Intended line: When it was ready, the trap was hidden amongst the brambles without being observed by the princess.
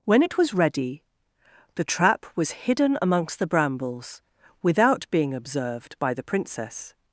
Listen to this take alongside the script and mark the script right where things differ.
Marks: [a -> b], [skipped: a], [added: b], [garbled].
When it was ready, the trap was hidden amongst the brambles without being observed by the princess.